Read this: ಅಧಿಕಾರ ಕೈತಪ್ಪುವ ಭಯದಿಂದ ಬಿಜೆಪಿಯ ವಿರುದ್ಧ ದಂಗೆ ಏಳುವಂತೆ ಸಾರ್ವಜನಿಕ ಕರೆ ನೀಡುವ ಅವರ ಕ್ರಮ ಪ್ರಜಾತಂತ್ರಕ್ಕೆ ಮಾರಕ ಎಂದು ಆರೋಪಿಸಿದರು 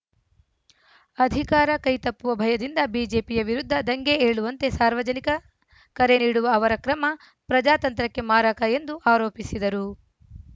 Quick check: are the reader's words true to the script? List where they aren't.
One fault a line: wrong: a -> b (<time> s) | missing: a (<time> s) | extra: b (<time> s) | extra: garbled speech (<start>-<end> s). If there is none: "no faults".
no faults